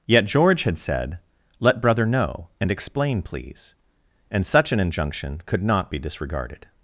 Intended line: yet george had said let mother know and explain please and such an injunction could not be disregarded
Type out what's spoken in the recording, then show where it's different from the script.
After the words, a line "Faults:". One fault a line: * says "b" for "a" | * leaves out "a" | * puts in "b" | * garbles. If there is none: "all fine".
yet george had said let brother know and explain please and such an injunction could not be disregarded
Faults:
* says "brother" for "mother"